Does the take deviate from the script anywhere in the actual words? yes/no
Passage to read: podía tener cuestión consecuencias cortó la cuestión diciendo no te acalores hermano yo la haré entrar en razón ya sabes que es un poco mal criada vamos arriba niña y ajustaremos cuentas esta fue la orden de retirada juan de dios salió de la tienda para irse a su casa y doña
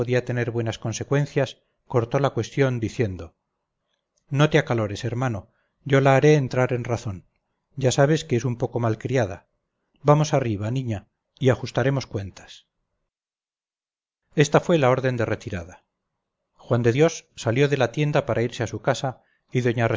yes